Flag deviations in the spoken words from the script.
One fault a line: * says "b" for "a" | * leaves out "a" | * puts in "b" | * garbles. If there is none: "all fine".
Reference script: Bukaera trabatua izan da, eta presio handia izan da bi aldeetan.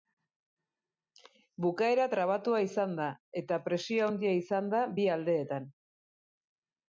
all fine